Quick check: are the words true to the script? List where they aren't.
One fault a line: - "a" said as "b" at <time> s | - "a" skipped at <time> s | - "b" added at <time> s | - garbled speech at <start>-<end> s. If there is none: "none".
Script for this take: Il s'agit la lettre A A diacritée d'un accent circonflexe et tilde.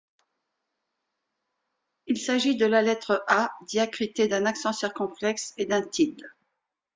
- "de" added at 2.5 s
- "A" skipped at 3.5 s
- "d'un" added at 5.6 s